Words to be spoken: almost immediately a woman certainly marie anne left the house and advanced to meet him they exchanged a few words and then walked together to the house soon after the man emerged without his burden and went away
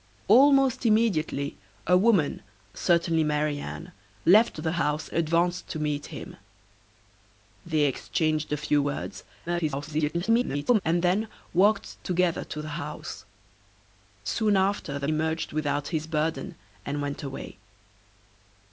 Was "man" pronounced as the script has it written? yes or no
no